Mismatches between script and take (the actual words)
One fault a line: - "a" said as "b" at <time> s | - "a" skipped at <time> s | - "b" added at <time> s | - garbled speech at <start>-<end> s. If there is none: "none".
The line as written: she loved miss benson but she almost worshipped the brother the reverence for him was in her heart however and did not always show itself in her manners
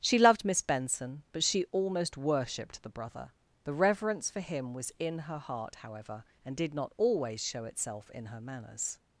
none